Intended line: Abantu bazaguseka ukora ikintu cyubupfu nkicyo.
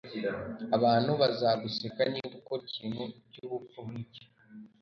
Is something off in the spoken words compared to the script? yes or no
yes